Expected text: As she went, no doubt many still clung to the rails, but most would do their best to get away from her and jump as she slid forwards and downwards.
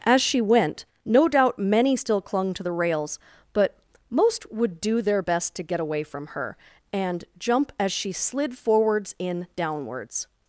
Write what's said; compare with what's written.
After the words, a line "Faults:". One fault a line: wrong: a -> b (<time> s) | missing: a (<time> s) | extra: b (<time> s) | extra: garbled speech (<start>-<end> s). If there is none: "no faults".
As she went, no doubt many still clung to the rails, but most would do their best to get away from her and jump as she slid forwards in downwards.
Faults:
wrong: and -> in (9.2 s)